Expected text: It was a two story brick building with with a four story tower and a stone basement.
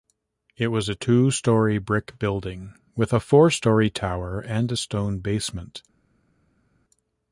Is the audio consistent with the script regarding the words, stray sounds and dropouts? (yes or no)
no